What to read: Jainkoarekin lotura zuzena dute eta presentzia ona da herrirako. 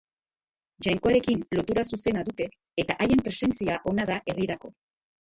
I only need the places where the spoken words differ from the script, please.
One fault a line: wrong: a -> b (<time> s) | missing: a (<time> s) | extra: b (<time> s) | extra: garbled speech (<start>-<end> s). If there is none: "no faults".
extra: haien (3.1 s)